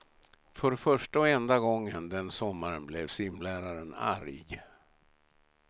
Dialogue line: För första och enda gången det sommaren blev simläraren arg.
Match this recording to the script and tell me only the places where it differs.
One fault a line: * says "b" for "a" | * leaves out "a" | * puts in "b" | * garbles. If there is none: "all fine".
* says "den" for "det"